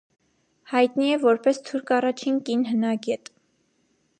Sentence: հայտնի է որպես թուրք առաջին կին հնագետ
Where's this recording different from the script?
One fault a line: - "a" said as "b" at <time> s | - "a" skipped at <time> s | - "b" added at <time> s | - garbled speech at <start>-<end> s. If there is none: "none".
none